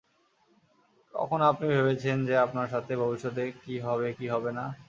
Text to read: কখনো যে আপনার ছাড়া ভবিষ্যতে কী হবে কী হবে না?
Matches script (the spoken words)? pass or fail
fail